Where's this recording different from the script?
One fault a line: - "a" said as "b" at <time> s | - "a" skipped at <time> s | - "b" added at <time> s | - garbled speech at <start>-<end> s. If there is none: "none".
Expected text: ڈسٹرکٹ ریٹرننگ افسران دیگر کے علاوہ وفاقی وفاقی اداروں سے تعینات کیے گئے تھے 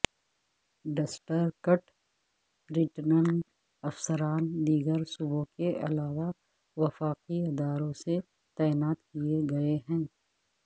- "صوبوں" added at 5.1 s
- "وفاقی" skipped at 7.4 s
- "تھے" said as "ہیں" at 9.9 s